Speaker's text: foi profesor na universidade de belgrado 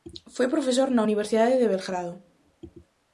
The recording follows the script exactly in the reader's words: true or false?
true